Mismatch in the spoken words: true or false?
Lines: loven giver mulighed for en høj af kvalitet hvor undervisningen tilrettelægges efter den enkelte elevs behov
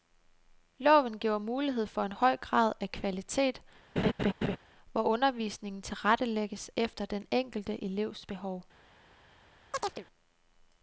true